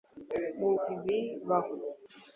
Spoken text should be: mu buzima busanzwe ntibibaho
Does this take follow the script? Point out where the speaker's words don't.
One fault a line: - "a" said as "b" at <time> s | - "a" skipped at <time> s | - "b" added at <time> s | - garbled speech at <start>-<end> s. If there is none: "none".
- "buzima busanzwe" skipped at 0.7 s